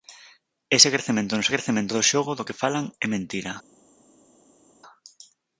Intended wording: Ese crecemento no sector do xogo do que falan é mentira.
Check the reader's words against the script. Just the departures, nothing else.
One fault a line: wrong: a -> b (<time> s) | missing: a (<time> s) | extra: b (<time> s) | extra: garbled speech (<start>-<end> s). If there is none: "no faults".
wrong: sector -> crecemento (1.5 s)